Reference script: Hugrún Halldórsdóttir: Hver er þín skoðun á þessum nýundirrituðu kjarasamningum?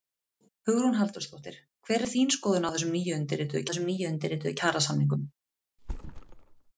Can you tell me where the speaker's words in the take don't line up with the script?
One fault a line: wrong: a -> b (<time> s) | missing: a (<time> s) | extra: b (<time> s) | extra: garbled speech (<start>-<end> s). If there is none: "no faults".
extra: þessum nýundirrituðu (3.7 s)